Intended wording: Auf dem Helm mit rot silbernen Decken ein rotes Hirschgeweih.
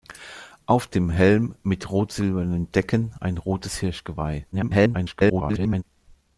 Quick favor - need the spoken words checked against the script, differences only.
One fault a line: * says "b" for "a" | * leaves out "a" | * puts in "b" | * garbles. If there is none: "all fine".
* garbles